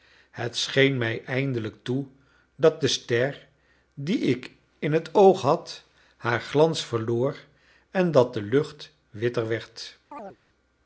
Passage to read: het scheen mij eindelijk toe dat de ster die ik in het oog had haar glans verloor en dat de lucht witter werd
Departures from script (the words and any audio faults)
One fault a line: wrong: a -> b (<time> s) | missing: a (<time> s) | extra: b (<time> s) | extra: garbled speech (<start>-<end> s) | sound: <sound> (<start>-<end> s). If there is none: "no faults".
sound: chirp (10.1-10.4 s)